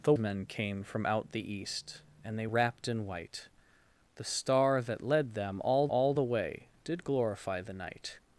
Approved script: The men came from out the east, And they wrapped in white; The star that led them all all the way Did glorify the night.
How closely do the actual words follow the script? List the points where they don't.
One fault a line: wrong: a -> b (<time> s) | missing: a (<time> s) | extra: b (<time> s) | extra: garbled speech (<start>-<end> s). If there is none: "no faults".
no faults